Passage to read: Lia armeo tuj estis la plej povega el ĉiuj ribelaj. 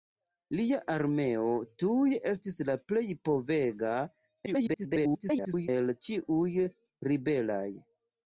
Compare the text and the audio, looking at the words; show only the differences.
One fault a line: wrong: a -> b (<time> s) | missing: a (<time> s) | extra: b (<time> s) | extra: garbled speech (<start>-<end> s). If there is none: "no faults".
extra: garbled speech (4.5-5.7 s)